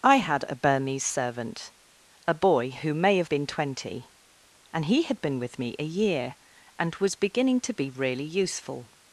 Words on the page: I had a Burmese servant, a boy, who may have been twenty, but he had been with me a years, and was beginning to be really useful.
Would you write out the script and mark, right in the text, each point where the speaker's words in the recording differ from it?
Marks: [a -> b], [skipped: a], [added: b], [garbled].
I had a Burmese servant, a boy, who may have been twenty, [but -> and] he had been with me a [years, -> year] and was beginning to be really useful.